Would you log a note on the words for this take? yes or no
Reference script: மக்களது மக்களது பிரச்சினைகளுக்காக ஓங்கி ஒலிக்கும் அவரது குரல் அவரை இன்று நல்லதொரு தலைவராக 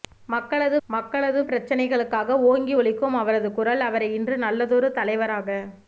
no